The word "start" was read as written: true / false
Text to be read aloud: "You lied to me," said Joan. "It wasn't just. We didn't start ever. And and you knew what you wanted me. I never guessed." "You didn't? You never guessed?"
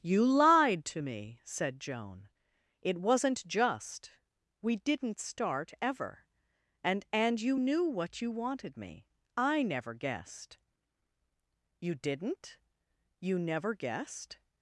true